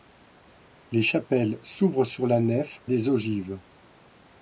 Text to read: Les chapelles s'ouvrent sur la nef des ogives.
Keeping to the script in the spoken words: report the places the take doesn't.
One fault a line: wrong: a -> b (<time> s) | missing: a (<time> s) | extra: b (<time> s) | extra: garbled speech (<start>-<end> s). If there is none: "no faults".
no faults